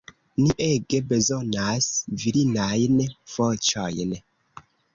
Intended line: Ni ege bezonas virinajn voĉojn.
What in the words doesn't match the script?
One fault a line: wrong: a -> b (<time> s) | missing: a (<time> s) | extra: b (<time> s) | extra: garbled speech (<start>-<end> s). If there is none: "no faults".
no faults